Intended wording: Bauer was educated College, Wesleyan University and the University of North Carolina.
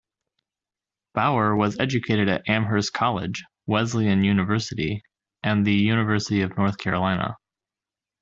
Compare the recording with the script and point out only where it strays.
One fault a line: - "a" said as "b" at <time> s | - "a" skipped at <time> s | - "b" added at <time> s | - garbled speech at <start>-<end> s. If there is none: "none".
- "at Amherst" added at 2.3 s